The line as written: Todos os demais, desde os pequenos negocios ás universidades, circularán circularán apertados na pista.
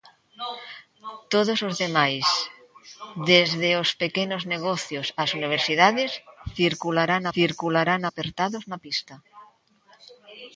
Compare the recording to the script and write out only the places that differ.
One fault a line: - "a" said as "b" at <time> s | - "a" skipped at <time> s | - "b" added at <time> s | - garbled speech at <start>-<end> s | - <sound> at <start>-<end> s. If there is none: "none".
none